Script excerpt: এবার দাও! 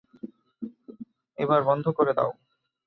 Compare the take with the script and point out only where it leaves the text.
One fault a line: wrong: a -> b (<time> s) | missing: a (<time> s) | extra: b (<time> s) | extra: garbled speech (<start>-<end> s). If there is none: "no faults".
extra: বন্ধ করে (1.7 s)